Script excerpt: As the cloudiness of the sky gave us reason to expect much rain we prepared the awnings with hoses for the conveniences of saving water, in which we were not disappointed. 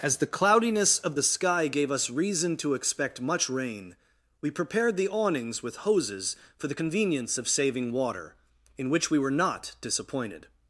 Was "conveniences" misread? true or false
true